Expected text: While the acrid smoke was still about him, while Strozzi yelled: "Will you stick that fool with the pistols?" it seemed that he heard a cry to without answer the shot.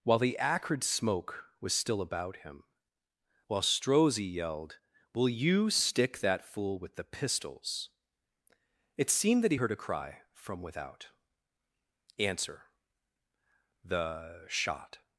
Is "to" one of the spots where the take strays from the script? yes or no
yes